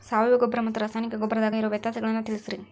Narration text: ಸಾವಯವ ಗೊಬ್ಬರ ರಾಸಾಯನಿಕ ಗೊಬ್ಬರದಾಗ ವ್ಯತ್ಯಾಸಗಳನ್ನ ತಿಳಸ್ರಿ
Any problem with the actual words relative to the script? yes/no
yes